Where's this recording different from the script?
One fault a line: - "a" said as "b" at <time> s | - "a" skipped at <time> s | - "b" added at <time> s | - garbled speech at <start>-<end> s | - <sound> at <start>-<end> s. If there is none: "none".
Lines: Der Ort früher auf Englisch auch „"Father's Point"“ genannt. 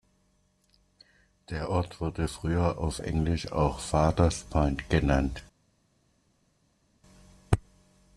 - "wurde" added at 2.0 s